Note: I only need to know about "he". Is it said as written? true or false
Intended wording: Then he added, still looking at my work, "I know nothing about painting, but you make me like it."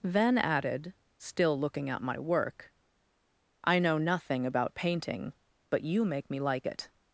false